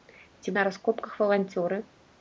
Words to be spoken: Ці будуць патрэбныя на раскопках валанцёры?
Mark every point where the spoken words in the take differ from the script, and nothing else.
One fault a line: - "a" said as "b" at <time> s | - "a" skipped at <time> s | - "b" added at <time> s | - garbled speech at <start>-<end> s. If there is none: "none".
- "будуць патрэбныя" skipped at 0.5 s